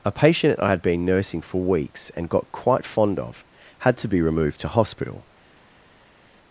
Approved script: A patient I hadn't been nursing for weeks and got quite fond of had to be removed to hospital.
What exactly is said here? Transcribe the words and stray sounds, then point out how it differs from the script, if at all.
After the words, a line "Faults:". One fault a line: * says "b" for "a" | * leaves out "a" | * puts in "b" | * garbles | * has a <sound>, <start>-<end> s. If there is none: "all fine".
A patient I had been nursing for weeks and got quite fond of had to be removed to hospital.
Faults:
* says "had" for "hadn't"